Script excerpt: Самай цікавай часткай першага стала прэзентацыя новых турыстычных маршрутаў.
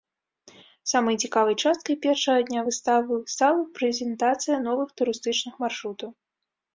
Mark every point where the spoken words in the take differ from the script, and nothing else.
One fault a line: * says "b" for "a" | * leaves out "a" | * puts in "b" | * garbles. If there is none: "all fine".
* puts in "дня выставы"